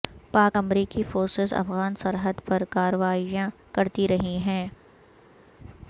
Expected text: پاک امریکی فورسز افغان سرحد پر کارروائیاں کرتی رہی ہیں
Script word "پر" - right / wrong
right